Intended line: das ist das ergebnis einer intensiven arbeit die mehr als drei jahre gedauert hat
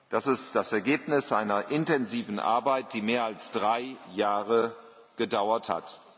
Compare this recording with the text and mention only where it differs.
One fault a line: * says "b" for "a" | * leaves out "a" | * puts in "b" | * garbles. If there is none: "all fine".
all fine